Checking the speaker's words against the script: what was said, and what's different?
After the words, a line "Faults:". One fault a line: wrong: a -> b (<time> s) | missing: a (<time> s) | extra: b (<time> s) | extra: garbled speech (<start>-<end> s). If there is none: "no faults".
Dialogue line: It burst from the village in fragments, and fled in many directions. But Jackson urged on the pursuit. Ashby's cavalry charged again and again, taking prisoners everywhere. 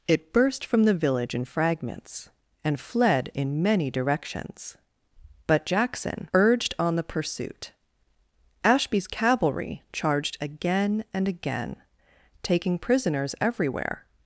It burst from the village in fragments, and fled in many directions. But Jackson urged on the pursuit. Ashby's cavalry charged again and again, taking prisoners everywhere.
Faults:
no faults